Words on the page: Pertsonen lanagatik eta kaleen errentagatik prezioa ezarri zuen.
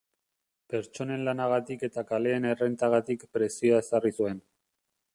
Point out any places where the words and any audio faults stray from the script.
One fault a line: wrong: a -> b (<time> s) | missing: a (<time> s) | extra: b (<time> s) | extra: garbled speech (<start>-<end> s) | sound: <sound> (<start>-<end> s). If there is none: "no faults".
no faults